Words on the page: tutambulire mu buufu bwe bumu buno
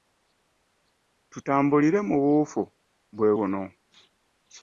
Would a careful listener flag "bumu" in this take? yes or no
yes